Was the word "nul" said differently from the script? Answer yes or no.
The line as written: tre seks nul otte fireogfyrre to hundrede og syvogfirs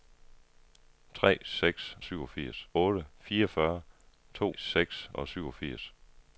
yes